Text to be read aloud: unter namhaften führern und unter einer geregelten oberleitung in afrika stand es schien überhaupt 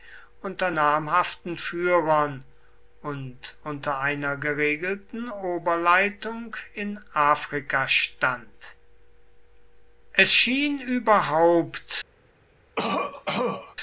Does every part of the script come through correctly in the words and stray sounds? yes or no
no